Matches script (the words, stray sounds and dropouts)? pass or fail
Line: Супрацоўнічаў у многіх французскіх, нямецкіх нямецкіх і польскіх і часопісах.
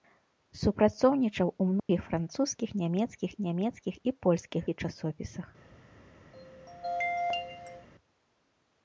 fail